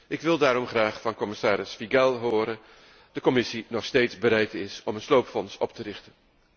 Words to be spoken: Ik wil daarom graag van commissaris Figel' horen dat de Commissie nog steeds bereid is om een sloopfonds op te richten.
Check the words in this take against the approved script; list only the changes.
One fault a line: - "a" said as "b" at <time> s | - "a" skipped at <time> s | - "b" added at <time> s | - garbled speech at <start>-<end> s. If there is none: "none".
- "dat" skipped at 2.6 s